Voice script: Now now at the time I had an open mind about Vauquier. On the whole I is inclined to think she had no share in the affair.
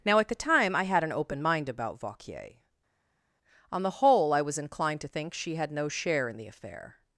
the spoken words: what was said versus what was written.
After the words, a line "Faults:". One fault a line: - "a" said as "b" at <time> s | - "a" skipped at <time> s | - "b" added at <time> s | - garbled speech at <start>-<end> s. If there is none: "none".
Now at the time I had an open mind about Vauquier. On the whole I was inclined to think she had no share in the affair.
Faults:
- "now" skipped at 0.2 s
- "is" said as "was" at 4.4 s